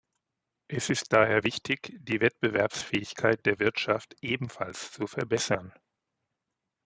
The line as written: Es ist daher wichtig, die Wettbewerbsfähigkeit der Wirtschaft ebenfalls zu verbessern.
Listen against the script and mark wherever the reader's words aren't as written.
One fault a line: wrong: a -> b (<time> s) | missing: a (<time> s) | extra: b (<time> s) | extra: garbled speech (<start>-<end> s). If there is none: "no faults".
no faults